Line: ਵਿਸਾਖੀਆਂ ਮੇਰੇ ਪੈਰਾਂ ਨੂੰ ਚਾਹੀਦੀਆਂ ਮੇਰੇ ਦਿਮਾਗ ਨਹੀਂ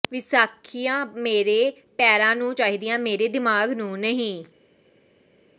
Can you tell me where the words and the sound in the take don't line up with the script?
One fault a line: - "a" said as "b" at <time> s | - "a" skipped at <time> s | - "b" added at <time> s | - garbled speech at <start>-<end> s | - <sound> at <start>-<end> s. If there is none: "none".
- "ਨੂੰ" added at 3.7 s